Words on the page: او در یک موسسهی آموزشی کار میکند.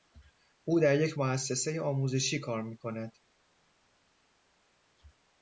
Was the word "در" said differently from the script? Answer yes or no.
no